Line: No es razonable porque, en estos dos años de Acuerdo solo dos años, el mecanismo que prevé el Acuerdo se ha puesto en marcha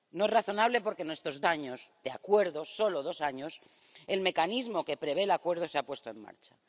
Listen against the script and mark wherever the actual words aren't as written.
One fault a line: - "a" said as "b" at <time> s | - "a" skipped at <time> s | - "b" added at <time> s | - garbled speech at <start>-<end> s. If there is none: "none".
- "dos" skipped at 1.4 s